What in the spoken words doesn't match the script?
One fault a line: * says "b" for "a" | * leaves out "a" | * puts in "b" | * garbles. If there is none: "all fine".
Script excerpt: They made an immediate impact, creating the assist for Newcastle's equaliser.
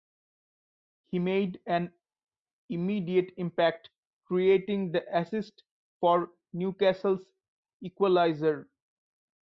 * says "He" for "They"